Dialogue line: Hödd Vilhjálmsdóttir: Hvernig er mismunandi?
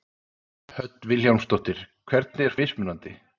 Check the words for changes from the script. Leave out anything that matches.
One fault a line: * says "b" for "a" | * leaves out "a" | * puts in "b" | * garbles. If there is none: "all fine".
all fine